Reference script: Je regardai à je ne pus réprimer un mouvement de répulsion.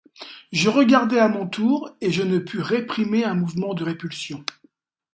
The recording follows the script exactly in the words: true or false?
false